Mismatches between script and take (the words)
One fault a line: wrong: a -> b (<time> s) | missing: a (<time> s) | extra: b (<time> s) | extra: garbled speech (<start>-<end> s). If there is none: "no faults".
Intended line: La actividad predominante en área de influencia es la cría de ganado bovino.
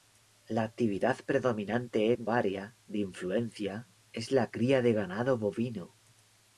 no faults